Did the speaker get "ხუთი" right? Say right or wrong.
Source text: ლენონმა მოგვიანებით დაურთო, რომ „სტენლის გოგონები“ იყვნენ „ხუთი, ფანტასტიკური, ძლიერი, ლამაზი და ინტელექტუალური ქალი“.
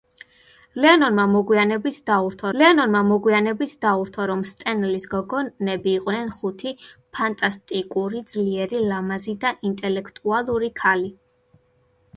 right